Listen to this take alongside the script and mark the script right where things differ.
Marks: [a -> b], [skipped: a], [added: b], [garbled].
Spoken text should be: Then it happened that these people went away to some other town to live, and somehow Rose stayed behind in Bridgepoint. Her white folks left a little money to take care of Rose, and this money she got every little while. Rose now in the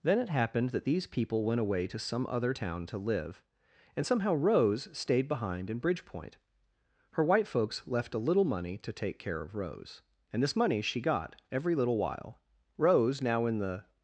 Then it happened that these people went away to some other town to live, and somehow Rose stayed behind in Bridgepoint. Her white folks left a little money to take care of Rose, and this money she got every little while. Rose now in the